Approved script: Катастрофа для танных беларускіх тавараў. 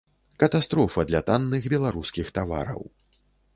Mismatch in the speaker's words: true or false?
false